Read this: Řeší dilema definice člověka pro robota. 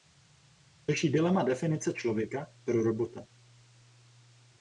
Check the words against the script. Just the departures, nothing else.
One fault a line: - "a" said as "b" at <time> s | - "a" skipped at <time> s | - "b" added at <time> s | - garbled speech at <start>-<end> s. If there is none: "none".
none